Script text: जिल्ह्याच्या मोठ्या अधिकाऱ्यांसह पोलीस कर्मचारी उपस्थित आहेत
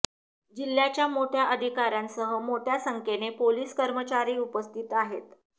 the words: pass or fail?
fail